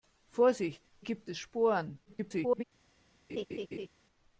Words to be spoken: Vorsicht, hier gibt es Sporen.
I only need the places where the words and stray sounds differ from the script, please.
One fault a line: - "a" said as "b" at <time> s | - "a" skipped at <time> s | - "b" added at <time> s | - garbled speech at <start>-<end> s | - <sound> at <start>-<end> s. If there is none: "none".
- "hier" skipped at 0.8 s
- garbled speech at 2.0-2.6 s
- laugh at 3.3-3.9 s